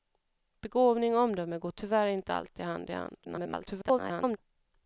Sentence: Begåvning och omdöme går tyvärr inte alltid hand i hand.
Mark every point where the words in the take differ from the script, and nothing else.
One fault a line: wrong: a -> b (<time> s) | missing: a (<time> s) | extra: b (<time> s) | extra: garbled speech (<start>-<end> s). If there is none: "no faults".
extra: garbled speech (3.2-4.4 s)